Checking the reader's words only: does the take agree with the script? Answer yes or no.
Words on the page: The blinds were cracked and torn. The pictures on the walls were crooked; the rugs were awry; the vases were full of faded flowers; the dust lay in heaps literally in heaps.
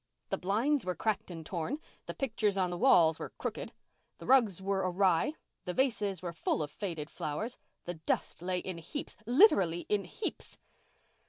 yes